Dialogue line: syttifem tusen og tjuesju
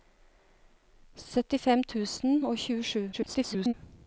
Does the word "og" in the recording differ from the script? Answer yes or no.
no